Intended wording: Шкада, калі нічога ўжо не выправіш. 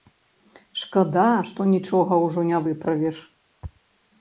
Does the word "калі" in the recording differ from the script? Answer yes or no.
yes